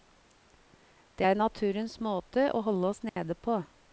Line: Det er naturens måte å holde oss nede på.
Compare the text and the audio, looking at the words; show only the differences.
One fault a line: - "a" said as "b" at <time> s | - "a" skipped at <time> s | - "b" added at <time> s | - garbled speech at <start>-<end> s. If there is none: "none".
none